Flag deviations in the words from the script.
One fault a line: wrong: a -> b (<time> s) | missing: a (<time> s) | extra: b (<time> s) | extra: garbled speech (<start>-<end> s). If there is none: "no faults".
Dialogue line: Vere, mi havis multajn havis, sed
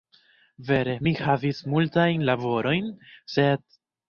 wrong: havis -> laborojn (2.3 s)